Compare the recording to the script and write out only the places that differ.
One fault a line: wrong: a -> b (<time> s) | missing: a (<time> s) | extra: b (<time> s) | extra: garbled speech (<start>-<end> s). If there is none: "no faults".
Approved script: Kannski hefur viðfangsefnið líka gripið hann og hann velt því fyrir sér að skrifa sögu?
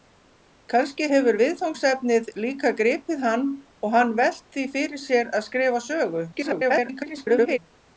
extra: garbled speech (6.3-7.6 s)